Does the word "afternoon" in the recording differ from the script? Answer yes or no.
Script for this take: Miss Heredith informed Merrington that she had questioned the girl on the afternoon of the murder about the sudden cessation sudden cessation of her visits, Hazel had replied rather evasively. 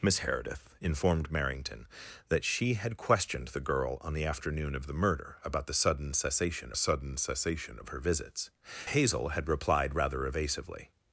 no